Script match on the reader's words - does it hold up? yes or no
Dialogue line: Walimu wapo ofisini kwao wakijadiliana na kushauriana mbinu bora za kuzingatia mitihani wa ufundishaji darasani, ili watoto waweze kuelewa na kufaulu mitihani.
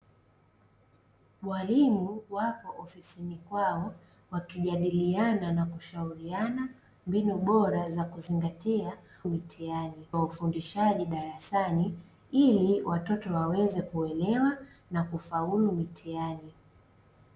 yes